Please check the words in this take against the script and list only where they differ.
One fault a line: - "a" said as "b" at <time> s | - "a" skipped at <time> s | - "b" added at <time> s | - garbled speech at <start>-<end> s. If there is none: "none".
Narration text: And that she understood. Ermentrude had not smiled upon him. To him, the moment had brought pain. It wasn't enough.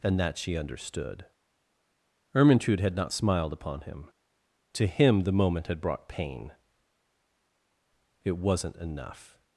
none